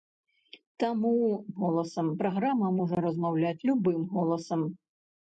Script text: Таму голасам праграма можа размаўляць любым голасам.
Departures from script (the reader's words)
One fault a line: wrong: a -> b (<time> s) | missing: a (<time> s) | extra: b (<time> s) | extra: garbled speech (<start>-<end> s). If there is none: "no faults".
no faults